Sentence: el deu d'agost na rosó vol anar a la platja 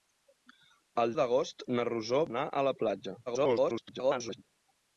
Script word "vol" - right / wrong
wrong